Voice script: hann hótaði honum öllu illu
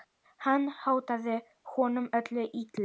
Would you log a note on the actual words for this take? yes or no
no